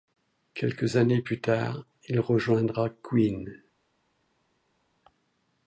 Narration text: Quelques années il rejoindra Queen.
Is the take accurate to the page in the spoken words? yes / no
no